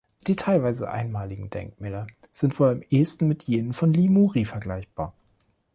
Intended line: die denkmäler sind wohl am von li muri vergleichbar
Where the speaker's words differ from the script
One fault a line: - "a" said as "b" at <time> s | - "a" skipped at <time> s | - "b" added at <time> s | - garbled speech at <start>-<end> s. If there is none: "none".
- "teilweise einmaligen" added at 0.3 s
- "ehesten mit jenen" added at 2.9 s